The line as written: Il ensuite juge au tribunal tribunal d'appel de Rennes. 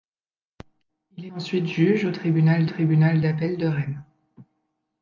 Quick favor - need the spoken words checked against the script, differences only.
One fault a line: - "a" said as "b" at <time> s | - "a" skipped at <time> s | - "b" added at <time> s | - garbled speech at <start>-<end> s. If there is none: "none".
none